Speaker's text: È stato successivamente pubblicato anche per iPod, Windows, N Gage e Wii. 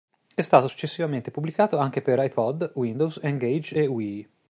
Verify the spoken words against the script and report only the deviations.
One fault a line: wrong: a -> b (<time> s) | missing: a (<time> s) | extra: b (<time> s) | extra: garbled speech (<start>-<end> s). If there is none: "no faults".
no faults